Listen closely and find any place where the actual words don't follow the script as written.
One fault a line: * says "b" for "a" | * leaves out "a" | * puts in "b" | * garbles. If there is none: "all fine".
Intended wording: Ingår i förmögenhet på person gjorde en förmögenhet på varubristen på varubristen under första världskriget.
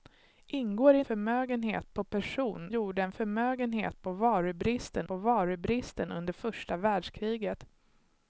all fine